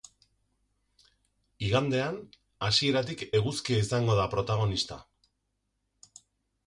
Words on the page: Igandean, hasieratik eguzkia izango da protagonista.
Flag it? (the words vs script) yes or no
no